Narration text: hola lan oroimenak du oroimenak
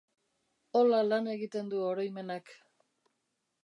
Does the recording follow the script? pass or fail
fail